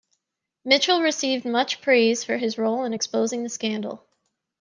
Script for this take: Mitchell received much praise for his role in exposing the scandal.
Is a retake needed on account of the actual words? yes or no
no